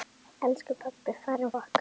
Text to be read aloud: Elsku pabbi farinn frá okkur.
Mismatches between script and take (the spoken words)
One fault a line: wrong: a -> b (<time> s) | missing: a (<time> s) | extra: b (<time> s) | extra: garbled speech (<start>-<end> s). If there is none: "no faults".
missing: frá (1.6 s)